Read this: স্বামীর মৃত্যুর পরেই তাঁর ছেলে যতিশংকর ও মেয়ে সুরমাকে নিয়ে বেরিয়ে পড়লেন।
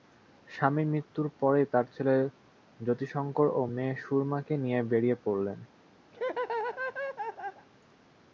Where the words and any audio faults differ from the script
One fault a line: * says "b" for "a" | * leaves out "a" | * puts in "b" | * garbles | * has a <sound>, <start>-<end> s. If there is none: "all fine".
* has a laugh, 6.1-7.7 s